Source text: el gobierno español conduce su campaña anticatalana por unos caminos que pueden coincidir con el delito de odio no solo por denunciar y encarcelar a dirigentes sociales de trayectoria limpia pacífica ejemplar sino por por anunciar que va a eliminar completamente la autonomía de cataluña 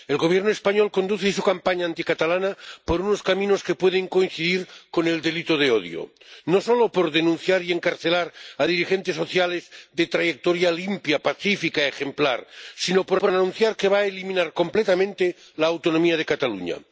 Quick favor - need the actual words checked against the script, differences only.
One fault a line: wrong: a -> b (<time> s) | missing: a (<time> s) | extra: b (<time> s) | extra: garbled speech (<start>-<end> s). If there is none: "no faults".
no faults